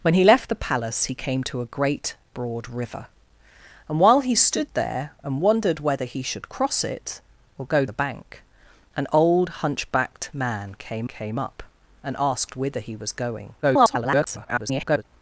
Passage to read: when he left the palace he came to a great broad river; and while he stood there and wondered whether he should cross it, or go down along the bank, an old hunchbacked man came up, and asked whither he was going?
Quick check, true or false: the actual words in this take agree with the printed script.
false